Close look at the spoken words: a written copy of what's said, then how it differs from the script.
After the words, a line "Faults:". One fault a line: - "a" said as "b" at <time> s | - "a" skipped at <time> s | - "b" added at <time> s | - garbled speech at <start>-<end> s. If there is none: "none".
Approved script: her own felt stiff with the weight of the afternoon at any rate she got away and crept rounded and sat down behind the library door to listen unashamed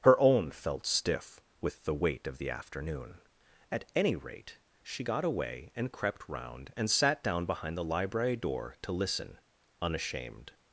her own felt stiff with the weight of the afternoon at any rate she got away and crept round and sat down behind the library door to listen unashamed
Faults:
- "rounded" said as "round" at 6.3 s